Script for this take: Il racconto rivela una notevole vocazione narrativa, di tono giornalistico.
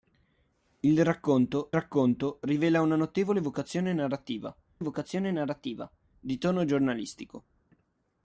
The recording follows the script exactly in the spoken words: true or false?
false